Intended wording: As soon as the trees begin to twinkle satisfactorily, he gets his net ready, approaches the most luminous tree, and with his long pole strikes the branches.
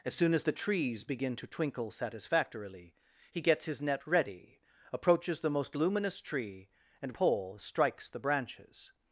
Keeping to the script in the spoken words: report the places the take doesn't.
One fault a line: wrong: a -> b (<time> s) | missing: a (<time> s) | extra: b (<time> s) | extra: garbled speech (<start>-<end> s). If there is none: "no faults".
missing: with his long (7.1 s)